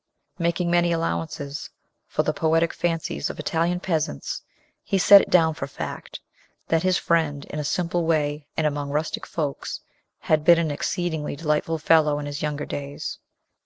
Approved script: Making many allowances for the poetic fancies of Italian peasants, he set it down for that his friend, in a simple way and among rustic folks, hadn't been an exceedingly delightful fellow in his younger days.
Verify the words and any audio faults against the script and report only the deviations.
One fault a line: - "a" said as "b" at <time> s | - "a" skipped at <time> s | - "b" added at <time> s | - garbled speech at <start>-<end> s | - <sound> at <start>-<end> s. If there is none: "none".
- "fact" added at 5.7 s
- "hadn't" said as "had" at 10.2 s